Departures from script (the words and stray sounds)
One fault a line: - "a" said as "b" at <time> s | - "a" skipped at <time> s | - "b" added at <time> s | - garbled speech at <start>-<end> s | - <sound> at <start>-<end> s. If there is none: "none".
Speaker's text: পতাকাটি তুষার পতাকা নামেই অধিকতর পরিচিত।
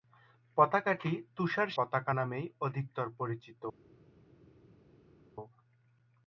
none